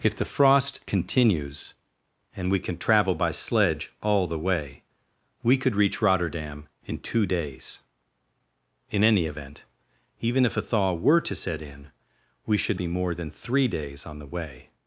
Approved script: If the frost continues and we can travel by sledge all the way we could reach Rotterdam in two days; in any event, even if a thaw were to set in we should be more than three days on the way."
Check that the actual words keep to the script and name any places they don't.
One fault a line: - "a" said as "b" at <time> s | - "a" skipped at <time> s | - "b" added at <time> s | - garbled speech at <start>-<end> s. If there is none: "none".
none